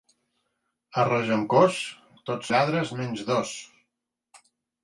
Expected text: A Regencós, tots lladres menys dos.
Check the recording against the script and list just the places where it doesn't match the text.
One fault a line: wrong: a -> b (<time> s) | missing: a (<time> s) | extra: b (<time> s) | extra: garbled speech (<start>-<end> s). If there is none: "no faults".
no faults